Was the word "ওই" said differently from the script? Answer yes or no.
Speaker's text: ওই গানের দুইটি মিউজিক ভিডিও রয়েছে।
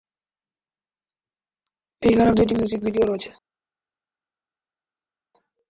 yes